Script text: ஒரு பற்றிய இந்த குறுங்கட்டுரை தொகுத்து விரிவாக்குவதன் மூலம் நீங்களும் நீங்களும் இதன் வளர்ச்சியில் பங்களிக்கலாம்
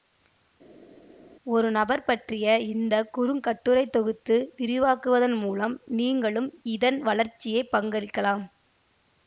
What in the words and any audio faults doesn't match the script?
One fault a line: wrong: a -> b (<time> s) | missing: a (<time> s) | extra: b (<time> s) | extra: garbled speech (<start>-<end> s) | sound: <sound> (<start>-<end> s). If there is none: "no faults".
extra: நபர் (1.8 s)
missing: நீங்களும் (6.5 s)